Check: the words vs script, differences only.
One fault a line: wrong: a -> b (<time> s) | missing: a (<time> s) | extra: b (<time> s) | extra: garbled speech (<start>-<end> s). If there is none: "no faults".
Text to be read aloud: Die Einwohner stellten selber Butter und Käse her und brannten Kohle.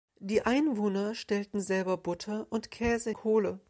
missing: her und brannten (3.1 s)